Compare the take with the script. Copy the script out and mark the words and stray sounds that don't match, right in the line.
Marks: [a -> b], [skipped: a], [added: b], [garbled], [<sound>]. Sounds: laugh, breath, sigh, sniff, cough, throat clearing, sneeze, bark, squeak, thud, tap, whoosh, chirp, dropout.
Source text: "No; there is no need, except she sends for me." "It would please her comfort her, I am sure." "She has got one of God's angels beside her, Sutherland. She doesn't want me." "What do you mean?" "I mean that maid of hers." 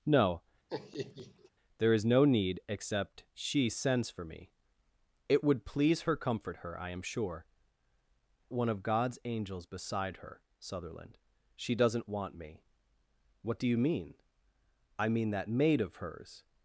"No; [laugh] there is no need, except she sends for me." "It would please her comfort her, I am sure." [skipped: "She has got] one of God's angels beside her, Sutherland. She doesn't want me." "What do you mean?" "I mean that maid of hers."